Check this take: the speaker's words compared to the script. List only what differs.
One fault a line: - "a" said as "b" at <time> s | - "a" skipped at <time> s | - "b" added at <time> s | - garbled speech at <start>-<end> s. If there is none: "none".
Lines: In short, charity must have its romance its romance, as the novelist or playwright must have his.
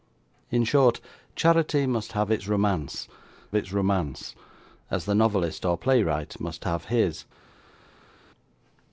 none